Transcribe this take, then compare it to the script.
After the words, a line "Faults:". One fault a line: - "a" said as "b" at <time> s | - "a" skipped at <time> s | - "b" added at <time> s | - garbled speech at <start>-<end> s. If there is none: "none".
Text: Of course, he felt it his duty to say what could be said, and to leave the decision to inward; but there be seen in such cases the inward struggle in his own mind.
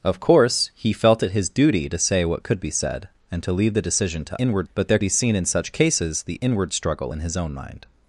Of course, he felt it his duty to say what could be said, and to leave the decision to inward; but there be seen in such cases the inward struggle in his own mind.
Faults:
none